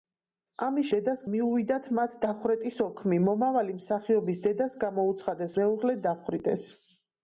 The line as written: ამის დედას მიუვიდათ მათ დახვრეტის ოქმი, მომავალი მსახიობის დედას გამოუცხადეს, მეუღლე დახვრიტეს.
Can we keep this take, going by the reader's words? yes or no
yes